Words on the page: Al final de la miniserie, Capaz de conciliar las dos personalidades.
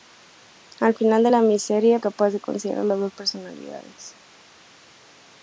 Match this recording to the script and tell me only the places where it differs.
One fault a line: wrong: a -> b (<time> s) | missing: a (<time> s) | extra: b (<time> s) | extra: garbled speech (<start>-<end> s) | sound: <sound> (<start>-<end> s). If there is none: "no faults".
no faults